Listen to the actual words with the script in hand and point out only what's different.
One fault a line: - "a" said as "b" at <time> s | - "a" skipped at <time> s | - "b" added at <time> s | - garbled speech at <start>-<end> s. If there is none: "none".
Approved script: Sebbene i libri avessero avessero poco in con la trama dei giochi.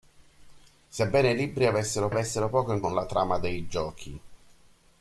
none